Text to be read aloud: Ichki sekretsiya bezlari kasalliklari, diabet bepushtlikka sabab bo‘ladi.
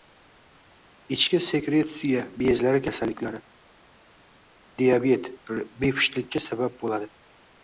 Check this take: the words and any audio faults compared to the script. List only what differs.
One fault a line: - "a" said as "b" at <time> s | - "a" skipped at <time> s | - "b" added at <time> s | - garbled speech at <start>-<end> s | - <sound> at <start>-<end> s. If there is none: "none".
none